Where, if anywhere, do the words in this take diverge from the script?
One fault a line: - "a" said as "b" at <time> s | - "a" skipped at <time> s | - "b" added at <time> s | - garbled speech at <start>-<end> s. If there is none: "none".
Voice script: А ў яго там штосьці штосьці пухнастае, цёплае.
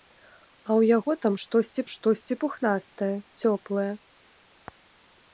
none